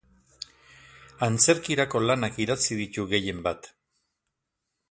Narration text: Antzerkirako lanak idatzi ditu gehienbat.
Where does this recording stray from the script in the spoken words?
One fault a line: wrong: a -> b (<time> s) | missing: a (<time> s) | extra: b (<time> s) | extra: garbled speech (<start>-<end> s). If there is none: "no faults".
no faults